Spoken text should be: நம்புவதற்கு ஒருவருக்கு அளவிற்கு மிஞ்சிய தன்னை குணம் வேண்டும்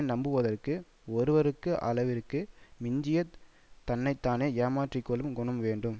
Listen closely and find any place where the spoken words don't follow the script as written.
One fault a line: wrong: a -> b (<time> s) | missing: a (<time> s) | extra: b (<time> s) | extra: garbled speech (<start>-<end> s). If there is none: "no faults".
extra: தானே ஏமாற்றி கொள்ளும் (4.2 s)